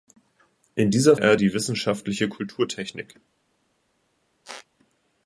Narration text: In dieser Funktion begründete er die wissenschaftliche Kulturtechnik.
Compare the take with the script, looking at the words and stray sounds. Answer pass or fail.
fail